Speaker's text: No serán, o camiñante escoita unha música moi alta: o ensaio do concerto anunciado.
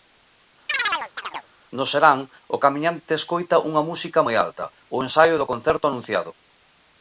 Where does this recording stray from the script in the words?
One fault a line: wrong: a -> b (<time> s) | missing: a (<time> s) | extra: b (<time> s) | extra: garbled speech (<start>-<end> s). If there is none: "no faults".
no faults